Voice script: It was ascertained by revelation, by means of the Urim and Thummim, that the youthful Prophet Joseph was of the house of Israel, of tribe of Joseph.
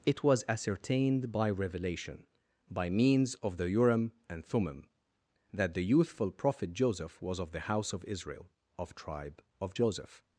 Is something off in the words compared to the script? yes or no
no